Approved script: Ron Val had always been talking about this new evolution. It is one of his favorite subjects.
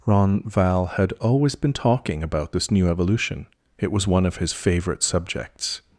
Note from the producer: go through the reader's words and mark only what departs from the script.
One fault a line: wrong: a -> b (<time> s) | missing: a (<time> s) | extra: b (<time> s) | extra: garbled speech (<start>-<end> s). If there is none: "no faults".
wrong: is -> was (3.9 s)